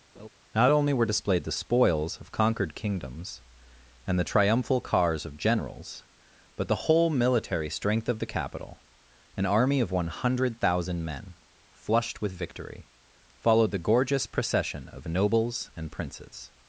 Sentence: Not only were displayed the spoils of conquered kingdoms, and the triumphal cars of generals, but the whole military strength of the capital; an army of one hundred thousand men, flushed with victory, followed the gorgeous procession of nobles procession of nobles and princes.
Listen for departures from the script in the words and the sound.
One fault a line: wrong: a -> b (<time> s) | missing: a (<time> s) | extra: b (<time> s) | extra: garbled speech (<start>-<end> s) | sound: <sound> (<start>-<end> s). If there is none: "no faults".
sound: laugh (0.2-0.3 s)
missing: procession of nobles (15.7 s)